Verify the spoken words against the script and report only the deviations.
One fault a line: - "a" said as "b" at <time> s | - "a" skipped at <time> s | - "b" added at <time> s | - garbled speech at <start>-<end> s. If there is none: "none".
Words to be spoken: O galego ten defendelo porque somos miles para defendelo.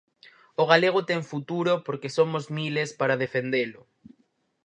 - "defendelo" said as "futuro" at 1.3 s